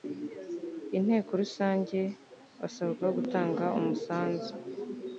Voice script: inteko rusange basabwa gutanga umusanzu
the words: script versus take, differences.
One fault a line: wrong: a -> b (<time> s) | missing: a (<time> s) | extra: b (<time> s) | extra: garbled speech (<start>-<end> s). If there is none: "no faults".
no faults